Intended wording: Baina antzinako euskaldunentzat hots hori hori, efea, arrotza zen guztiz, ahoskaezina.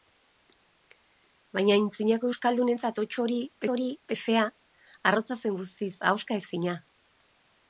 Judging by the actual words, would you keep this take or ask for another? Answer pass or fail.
pass